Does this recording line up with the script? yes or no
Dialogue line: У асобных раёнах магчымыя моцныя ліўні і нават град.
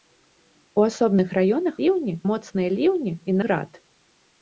no